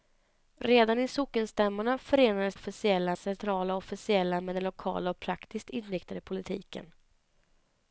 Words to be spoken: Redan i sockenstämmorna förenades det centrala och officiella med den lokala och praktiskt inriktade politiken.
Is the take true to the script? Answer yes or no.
no